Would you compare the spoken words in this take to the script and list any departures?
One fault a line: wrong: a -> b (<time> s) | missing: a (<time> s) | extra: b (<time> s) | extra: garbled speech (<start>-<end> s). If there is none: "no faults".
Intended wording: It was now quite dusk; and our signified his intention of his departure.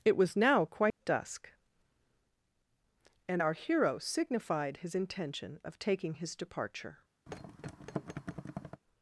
extra: hero (3.5 s)
extra: taking (5.8 s)